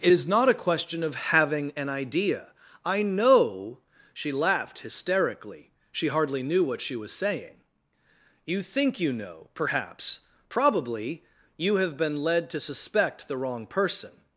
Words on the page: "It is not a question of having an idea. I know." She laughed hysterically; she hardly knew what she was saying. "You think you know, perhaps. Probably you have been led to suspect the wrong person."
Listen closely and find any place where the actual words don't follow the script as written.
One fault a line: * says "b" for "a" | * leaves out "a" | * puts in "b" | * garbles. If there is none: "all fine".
all fine